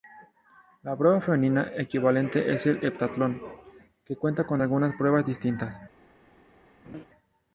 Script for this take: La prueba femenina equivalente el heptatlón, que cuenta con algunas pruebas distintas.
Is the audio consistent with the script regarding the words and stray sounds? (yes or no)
no